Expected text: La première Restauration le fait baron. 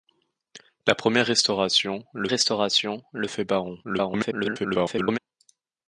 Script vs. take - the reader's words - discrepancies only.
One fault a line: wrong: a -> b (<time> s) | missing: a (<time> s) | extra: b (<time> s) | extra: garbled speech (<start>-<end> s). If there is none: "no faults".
extra: Restauration le (2.3 s)
extra: garbled speech (3.8-5.2 s)